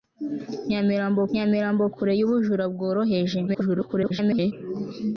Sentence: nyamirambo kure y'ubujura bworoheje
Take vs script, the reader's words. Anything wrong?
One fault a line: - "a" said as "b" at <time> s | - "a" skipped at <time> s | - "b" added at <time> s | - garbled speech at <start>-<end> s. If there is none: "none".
- "nyamirambo" added at 1.3 s
- garbled speech at 3.5-4.5 s